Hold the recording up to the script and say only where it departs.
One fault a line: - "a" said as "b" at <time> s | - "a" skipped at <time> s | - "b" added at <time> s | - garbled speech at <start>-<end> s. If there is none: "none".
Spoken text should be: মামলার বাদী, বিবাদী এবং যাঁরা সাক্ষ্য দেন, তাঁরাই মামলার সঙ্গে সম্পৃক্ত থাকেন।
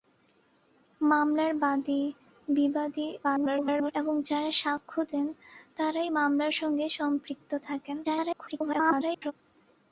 - garbled speech at 3.2-3.9 s
- garbled speech at 8.0-9.3 s